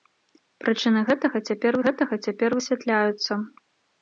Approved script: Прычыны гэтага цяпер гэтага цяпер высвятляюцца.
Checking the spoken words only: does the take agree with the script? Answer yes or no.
yes